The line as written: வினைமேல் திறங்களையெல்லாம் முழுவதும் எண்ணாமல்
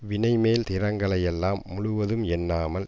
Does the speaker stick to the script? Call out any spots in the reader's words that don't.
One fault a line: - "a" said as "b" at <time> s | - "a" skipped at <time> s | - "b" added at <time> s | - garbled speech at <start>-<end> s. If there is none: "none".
none